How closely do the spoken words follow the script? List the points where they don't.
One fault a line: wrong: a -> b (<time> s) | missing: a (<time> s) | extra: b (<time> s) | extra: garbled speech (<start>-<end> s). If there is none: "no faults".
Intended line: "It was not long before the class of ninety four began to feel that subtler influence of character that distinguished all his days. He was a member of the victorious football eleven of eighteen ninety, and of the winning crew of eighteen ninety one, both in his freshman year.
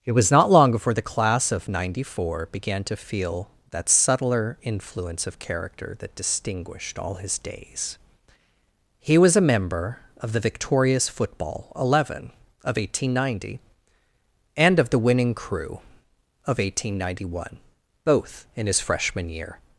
no faults